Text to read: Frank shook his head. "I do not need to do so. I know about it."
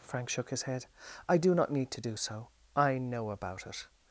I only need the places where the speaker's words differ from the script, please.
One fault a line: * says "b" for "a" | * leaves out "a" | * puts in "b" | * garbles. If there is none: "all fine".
all fine